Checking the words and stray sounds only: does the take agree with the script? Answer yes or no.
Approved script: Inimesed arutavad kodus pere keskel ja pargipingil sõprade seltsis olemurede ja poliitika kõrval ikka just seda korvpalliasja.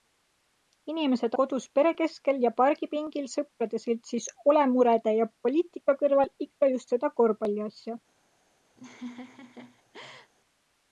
no